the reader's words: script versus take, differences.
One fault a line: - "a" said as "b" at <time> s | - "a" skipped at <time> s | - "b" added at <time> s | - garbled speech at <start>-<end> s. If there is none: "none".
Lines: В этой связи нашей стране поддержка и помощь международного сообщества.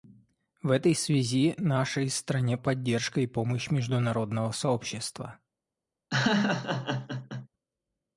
none